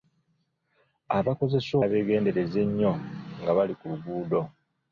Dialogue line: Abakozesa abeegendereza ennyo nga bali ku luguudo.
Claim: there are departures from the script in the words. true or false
false